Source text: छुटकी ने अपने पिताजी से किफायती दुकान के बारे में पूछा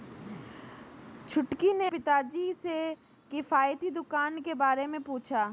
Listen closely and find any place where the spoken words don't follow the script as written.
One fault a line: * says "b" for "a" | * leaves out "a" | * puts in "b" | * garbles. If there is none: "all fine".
* leaves out "अपने"